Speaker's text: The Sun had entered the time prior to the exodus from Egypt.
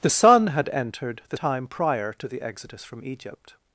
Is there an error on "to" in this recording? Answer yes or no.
no